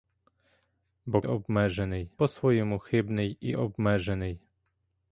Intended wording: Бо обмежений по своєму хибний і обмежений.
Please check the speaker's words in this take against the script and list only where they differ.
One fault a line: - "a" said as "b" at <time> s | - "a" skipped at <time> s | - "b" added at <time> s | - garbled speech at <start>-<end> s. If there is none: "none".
none